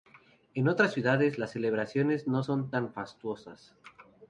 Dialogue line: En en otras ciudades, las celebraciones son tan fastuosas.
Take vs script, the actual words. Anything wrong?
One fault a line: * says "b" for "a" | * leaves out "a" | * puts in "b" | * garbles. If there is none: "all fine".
* leaves out "en"
* puts in "no"